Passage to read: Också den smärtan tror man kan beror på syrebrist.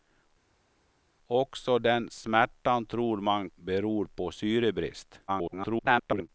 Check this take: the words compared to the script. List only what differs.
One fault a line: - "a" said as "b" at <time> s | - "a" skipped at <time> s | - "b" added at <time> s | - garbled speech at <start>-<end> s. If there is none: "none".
- "kan" skipped at 3.5 s
- garbled speech at 5.3-6.3 s